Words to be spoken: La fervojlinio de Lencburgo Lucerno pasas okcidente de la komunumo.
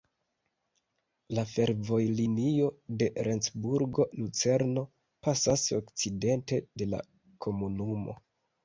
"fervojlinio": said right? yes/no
yes